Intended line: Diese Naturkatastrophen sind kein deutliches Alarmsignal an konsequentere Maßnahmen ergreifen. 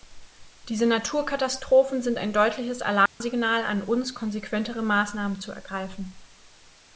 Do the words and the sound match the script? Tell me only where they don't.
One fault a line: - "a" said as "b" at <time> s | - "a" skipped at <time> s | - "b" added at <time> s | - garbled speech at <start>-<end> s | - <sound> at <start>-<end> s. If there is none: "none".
- "kein" said as "ein" at 2.2 s
- dropout at 3.1-3.2 s
- "uns" added at 3.8 s
- "zu" added at 5.4 s